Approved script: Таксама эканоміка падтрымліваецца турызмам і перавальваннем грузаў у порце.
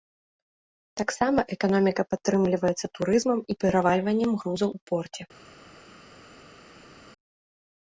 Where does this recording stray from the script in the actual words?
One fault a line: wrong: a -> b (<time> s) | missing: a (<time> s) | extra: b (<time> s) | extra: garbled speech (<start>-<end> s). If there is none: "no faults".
no faults